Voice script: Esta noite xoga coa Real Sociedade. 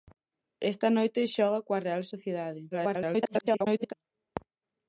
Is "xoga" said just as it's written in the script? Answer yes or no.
yes